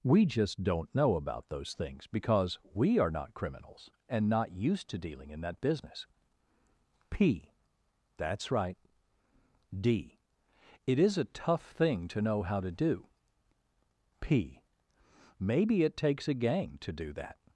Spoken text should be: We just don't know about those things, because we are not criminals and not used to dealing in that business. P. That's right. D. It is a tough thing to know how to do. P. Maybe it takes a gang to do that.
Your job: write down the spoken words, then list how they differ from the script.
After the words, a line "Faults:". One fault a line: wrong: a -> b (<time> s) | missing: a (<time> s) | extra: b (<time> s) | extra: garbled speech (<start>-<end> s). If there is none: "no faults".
We just don't know about those things, because we are not criminals and not used to dealing in that business. P. That's right. D. It is a tough thing to know how to do. P. Maybe it takes a gang to do that.
Faults:
no faults